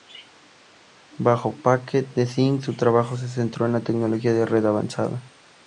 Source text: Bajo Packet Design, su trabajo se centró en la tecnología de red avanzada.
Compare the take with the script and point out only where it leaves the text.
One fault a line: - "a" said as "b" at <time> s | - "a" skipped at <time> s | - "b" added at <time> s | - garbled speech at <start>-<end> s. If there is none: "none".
none